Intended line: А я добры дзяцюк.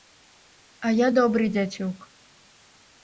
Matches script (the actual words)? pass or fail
pass